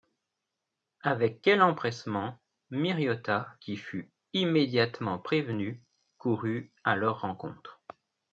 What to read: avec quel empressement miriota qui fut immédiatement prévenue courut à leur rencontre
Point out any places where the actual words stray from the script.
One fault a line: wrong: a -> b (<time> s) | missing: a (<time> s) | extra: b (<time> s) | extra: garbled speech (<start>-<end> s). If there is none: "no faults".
no faults